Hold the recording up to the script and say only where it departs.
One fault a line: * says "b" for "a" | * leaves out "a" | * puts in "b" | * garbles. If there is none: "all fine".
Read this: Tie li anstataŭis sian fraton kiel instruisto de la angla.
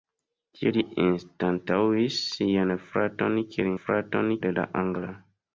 * says "fraton" for "instruisto"